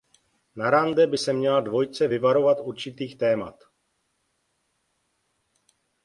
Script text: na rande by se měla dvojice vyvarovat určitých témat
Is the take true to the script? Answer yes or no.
yes